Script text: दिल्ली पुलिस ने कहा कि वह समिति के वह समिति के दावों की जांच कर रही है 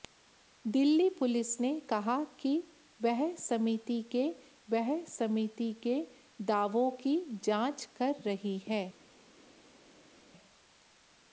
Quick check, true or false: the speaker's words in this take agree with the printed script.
true